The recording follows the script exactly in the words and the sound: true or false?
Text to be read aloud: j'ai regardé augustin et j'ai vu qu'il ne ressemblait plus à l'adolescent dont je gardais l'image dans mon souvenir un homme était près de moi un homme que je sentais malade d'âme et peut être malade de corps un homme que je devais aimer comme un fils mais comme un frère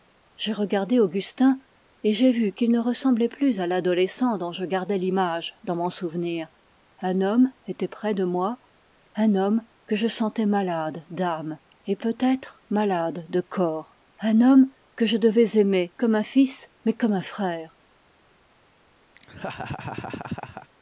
false